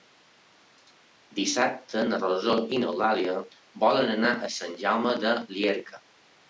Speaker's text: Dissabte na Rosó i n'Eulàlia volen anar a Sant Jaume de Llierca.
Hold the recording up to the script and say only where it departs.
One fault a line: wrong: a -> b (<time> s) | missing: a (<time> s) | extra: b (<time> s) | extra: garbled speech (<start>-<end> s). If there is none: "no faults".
no faults